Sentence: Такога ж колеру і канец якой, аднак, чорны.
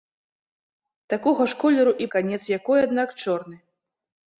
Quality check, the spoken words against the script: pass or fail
pass